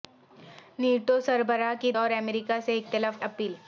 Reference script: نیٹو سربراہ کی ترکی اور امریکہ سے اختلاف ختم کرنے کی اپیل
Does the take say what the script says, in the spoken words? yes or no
no